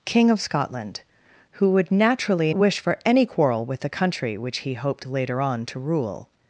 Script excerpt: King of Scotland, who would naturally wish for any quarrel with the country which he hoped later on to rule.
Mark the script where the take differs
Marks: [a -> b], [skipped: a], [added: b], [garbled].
King of Scotland, who would naturally wish for any quarrel with the country which he hoped later on to rule.